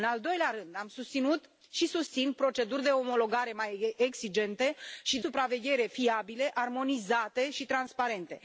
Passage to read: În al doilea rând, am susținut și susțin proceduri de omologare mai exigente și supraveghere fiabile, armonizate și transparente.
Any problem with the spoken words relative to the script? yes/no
no